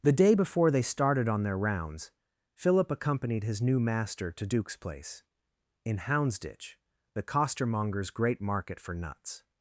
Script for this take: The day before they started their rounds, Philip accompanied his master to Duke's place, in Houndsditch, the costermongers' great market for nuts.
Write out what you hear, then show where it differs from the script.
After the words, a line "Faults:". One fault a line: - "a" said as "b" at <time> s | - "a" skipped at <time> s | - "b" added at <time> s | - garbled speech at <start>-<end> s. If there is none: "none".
The day before they started on their rounds, Philip accompanied his new master to Duke's place, in Houndsditch, the costermongers' great market for nuts.
Faults:
- "on" added at 1.3 s
- "new" added at 3.6 s